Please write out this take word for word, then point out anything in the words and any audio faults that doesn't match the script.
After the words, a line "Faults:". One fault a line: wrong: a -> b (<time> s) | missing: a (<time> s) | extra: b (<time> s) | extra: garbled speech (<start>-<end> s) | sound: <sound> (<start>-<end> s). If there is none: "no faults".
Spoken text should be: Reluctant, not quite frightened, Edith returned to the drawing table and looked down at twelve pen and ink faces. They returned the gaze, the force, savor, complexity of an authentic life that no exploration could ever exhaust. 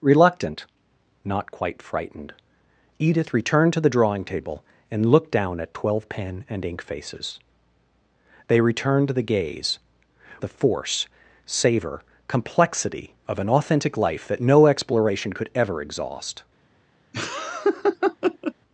Reluctant, not quite frightened, Edith returned to the drawing table and looked down at twelve pen and ink faces. They returned the gaze, the force, savor, complexity of an authentic life that no exploration could ever exhaust.
Faults:
sound: laugh (17.1-18.5 s)